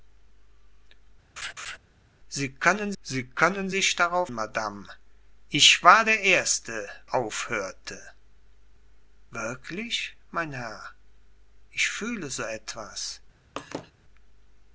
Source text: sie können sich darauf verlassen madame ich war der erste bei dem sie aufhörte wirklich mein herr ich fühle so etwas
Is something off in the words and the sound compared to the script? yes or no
yes